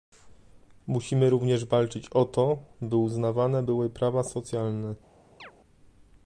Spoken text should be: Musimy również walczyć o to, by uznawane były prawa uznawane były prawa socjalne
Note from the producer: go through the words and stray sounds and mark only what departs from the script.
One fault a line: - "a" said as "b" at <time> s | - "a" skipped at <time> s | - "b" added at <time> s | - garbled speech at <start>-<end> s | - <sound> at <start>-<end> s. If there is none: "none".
- "uznawane były prawa" skipped at 4.2 s
- chirp at 5.4-5.5 s